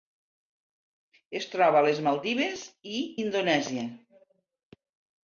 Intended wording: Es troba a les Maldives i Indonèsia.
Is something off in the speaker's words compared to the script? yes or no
no